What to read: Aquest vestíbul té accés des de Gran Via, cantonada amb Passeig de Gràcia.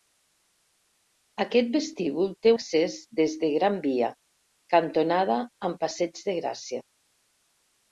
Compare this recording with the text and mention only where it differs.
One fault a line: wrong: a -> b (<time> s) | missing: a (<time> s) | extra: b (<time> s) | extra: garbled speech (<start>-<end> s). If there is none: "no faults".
no faults